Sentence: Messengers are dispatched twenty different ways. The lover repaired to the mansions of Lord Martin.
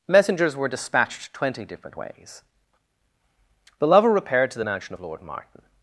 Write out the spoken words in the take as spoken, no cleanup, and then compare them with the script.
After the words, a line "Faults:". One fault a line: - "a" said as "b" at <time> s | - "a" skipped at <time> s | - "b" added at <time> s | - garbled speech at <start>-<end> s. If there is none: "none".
Messengers were dispatched twenty different ways. The lover repaired to the mansion of Lord Martin.
Faults:
- "are" said as "were" at 0.6 s
- "mansions" said as "mansion" at 4.6 s